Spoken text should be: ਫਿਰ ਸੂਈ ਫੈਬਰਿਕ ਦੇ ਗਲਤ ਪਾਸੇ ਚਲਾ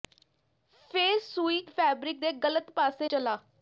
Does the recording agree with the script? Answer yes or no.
yes